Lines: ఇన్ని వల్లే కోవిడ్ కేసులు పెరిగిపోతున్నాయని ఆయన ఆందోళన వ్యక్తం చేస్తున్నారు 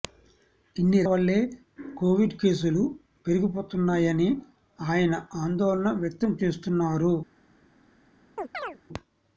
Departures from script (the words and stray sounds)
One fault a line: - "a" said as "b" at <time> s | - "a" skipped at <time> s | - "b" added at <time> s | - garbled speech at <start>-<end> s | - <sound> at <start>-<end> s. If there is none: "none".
- chirp at 8.4-8.8 s